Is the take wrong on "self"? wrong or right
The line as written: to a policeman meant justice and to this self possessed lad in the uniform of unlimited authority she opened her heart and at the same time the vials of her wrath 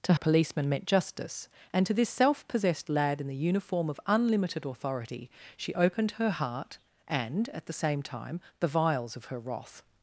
right